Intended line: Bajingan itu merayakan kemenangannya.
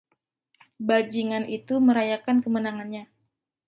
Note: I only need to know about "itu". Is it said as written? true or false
true